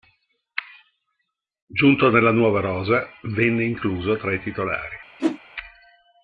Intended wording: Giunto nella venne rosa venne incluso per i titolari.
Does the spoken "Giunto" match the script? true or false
true